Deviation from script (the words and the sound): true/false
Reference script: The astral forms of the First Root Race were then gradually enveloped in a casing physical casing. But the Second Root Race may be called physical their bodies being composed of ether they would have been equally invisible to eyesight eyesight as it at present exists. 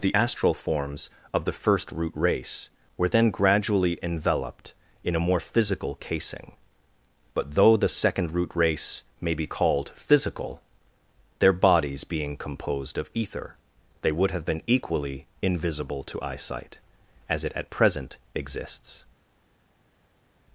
true